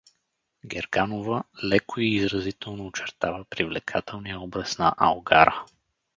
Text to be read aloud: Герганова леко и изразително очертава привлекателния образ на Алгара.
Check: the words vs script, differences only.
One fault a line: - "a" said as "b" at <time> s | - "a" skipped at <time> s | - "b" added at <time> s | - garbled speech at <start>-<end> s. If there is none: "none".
none